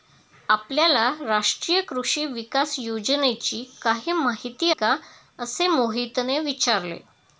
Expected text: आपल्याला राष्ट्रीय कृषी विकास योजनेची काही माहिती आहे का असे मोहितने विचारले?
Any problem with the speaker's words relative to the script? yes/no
yes